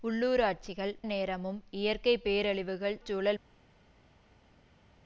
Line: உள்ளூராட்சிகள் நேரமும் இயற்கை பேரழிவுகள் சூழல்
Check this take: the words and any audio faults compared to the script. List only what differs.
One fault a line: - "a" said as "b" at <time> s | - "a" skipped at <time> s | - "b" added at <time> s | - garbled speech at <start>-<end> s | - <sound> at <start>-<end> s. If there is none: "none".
none